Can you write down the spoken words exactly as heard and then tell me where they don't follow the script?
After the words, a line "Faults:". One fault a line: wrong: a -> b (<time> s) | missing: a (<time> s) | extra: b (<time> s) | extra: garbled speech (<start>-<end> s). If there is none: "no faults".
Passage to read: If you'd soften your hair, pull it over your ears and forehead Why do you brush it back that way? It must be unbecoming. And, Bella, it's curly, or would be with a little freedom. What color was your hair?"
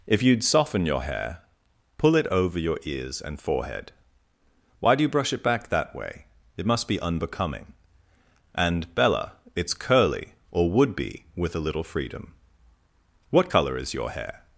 If you'd soften your hair, pull it over your ears and forehead Why do you brush it back that way? It must be unbecoming. And, Bella, it's curly, or would be with a little freedom. What color is your hair?"
Faults:
wrong: was -> is (13.8 s)